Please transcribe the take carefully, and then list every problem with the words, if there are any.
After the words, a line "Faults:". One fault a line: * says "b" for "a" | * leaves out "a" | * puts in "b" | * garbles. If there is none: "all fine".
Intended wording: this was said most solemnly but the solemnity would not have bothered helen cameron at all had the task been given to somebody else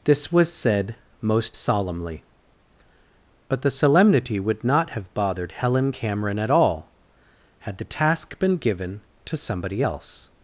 this was said most solemnly but the solemnity would not have bothered helen cameron at all had the task been given to somebody else
Faults:
all fine